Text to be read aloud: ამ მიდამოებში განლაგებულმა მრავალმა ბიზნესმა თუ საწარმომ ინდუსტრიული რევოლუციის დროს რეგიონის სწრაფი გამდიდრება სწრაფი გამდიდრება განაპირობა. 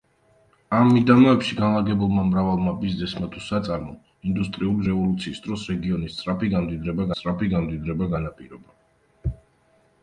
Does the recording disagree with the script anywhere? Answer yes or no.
no